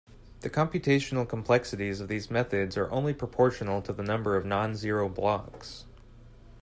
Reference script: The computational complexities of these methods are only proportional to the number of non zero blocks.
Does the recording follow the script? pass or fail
pass